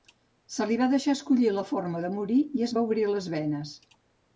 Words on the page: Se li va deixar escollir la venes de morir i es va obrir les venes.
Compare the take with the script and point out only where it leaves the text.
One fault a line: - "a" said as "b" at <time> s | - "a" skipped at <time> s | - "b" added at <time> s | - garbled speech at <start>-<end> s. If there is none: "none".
- "venes" said as "forma" at 1.8 s